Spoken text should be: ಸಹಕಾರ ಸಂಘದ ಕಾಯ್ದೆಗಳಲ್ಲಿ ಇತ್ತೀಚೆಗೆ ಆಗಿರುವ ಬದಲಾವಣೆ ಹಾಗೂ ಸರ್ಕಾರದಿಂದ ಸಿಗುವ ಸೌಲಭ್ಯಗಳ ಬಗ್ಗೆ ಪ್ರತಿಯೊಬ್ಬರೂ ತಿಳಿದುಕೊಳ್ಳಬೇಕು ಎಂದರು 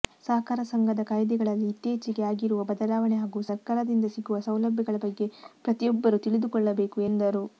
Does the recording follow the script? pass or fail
pass